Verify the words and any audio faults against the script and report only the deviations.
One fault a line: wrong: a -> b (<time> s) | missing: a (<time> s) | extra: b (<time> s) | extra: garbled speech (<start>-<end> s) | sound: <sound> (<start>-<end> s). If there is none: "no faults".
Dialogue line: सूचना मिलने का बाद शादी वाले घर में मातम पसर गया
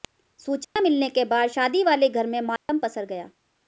sound: dropout (0.6-0.8 s)
wrong: का -> के (1.1 s)
sound: dropout (2.6-2.7 s)